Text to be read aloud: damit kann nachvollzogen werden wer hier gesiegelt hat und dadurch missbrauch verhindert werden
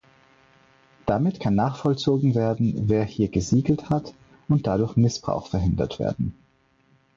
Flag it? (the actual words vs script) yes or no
no